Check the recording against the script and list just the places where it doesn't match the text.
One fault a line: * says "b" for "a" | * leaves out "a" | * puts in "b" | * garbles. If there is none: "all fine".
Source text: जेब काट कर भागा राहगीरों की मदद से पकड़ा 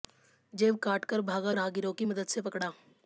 all fine